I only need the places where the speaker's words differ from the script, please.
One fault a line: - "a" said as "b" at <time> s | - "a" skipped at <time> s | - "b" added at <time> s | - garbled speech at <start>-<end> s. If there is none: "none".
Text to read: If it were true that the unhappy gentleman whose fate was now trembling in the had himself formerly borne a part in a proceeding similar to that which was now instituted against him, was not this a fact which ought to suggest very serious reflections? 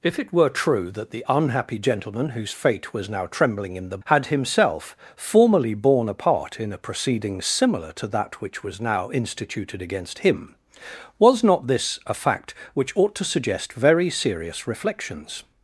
none